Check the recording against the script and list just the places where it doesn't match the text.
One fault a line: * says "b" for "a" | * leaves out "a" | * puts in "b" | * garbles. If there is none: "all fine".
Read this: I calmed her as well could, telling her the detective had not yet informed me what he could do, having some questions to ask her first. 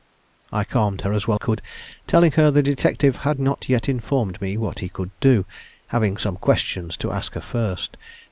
all fine